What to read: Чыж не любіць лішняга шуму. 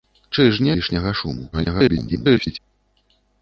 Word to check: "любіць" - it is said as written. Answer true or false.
false